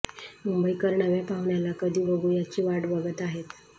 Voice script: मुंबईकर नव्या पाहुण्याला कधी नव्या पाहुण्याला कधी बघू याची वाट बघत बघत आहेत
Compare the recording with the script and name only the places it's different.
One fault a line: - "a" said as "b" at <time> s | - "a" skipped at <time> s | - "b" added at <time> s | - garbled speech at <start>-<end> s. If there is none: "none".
- "नव्या पाहुण्याला कधी" skipped at 2.0 s
- "बघत" skipped at 3.2 s